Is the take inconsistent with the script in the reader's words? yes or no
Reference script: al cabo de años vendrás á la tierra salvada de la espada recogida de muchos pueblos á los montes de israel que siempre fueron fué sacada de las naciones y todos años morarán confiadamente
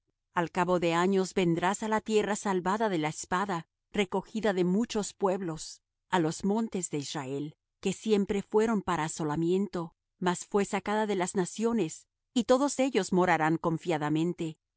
yes